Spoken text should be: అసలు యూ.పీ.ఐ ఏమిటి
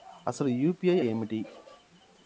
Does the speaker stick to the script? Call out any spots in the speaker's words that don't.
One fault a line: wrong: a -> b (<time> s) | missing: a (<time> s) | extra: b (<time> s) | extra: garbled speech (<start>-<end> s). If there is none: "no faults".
no faults